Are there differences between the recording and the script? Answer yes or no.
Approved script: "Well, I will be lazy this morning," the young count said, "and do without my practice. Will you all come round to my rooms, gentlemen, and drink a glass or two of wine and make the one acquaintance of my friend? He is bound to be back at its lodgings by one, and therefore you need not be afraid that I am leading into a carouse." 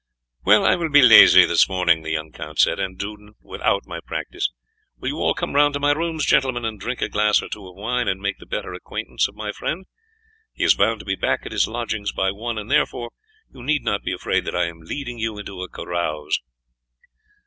yes